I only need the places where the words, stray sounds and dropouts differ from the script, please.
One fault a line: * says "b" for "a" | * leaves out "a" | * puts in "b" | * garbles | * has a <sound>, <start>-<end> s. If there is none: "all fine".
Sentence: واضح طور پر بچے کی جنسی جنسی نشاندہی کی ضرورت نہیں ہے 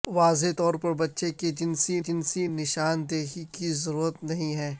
all fine